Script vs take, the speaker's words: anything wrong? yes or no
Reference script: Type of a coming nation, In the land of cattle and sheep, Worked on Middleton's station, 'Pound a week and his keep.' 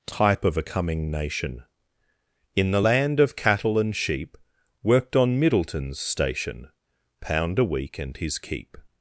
no